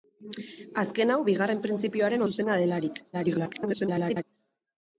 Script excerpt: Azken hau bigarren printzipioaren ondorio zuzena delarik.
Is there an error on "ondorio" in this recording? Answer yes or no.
yes